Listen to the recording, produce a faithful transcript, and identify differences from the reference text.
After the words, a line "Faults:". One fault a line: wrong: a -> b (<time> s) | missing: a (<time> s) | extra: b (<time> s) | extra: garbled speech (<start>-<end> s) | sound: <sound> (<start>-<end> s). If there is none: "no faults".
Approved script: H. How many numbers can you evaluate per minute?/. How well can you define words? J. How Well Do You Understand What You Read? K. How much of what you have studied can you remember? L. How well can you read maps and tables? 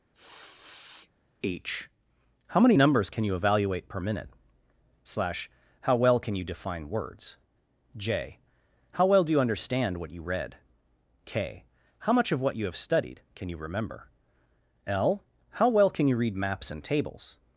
H. How many numbers can you evaluate per minute?/. slash How well can you define words? J. How Well Do You Understand What You Read? K. How much of what you have studied can you remember? L. How well can you read maps and tables?
Faults:
sound: sniff (0.1-1.1 s)
extra: slash (5.0 s)